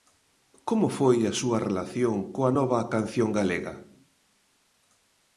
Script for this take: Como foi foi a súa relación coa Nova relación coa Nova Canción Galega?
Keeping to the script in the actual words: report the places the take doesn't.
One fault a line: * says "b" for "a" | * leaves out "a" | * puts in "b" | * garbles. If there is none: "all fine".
* leaves out "foi"
* leaves out "relación coa Nova"